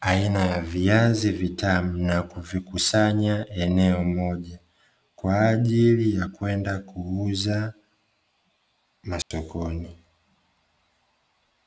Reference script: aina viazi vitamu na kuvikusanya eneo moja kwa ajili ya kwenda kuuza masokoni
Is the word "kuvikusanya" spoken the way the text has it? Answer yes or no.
yes